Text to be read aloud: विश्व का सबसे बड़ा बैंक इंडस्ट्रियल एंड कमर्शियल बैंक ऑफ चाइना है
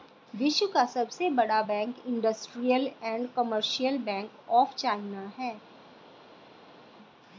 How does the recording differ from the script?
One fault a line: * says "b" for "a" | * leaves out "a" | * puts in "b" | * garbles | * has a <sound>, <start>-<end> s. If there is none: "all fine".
all fine